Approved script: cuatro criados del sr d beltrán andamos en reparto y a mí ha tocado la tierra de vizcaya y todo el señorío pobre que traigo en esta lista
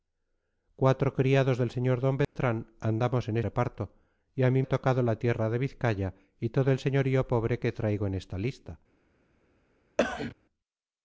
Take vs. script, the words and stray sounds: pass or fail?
fail